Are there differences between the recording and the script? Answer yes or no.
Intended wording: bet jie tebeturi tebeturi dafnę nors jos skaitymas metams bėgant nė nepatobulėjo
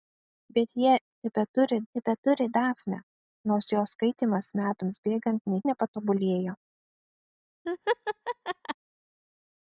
no